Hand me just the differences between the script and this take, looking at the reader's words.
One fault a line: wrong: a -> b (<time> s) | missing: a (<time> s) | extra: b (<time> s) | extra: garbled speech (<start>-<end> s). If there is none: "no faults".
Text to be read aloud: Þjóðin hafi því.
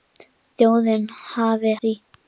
no faults